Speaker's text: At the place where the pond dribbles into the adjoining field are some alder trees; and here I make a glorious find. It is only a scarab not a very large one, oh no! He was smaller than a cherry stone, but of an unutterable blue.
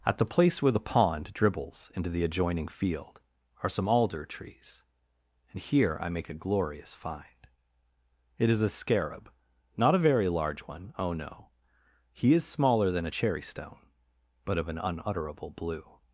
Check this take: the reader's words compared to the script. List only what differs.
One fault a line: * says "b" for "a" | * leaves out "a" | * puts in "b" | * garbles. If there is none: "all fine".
* leaves out "only"
* says "is" for "was"